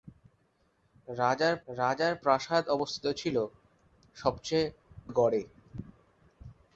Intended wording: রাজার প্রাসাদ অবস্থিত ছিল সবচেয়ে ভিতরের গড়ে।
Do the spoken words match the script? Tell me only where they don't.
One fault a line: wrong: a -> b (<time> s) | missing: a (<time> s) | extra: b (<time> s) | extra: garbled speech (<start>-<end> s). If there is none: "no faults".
extra: রাজার (1.7 s)
missing: ভিতরের (4.7 s)